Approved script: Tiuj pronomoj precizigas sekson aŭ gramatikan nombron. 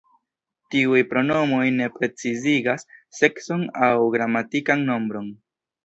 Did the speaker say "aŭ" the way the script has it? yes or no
yes